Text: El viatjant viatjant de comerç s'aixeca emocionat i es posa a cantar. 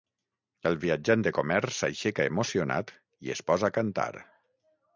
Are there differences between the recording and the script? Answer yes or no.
yes